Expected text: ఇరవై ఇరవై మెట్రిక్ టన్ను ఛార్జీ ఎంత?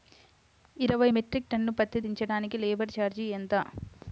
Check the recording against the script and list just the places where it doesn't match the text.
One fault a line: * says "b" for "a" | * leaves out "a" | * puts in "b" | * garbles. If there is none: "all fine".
* leaves out "ఇరవై"
* puts in "పత్తి దించటానికి లేబర్"